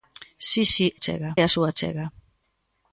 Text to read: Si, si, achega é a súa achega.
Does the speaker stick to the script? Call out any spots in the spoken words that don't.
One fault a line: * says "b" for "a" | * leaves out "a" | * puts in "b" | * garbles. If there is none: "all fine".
all fine